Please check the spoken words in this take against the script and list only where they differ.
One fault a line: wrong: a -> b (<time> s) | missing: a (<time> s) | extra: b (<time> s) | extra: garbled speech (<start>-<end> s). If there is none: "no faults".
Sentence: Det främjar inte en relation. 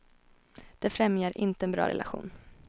extra: bra (1.7 s)